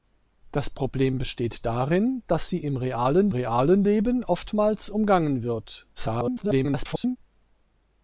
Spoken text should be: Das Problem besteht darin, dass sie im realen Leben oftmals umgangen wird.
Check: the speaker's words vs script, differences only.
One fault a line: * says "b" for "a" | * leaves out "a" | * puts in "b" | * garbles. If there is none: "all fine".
* puts in "realen"
* garbles